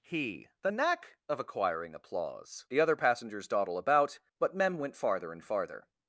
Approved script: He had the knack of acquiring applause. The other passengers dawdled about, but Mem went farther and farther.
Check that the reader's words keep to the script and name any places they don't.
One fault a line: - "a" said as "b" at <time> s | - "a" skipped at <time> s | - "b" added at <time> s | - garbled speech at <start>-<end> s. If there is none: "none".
- "had" skipped at 0.5 s
- "dawdled" said as "dawdle" at 3.5 s